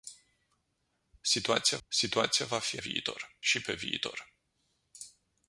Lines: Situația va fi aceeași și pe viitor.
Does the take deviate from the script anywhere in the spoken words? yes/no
yes